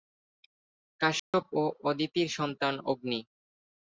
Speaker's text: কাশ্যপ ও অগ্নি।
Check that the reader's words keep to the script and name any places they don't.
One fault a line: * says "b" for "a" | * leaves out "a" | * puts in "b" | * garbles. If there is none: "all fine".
* puts in "অদিতির সন্তান"